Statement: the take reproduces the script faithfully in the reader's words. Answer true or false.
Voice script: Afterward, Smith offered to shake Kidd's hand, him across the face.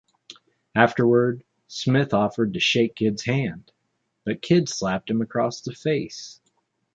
false